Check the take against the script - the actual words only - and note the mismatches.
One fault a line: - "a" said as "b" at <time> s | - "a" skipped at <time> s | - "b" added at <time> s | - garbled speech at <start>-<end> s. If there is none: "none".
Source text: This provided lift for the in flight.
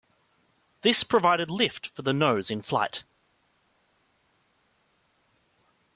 - "nose" added at 2.1 s